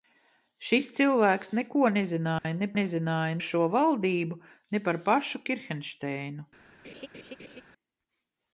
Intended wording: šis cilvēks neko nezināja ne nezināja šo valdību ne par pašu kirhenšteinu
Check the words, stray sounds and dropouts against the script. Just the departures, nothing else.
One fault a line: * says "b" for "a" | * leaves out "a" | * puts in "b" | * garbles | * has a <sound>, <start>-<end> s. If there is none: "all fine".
* has a dropout, 2.4-2.4 s
* has a laugh, 6.8-7.6 s